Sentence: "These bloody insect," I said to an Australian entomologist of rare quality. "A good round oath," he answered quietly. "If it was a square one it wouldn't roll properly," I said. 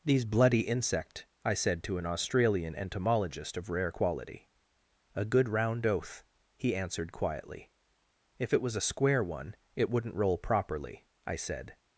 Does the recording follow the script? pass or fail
pass